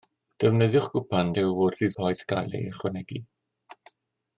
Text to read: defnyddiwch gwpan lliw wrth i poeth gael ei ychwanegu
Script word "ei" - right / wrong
right